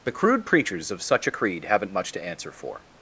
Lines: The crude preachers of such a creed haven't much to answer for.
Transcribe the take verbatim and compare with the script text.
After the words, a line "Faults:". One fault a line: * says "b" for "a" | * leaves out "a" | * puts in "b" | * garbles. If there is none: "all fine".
The crude preachers of such a creed haven't much to answer for.
Faults:
all fine